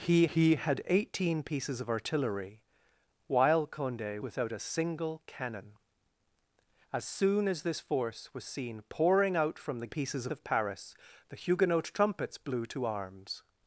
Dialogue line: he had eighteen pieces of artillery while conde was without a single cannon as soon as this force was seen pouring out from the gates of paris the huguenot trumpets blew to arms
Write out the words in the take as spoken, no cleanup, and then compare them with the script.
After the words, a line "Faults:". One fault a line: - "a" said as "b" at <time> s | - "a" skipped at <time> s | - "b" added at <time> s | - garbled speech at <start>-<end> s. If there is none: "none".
he he had eighteen pieces of artillery while conde without a single cannon as soon as this force was seen pouring out from the pieces of paris the huguenot trumpets blew to arms
Faults:
- "he" added at 0.3 s
- "was" skipped at 4.2 s
- "gates" said as "pieces" at 9.9 s